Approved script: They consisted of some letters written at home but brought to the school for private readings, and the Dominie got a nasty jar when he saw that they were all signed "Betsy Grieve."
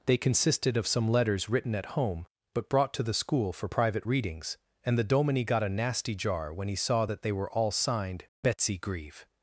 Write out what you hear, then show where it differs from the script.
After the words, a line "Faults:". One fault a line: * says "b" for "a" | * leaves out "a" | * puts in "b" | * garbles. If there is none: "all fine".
They consisted of some letters written at home but brought to the school for private readings, and the Dominie got a nasty jar when he saw that they were all signed "Betsy Grieve."
Faults:
all fine